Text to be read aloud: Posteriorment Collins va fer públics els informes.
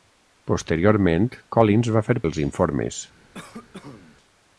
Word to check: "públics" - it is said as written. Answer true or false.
false